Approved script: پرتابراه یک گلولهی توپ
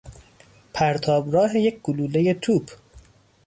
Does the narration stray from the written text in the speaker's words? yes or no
no